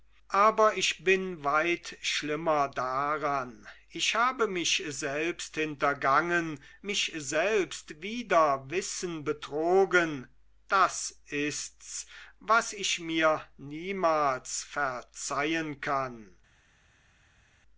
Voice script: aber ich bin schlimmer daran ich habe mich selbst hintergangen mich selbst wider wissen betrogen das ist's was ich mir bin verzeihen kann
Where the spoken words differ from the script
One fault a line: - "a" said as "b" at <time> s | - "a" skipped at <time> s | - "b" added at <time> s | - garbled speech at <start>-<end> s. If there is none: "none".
- "weit" added at 1.4 s
- "bin" said as "niemals" at 13.6 s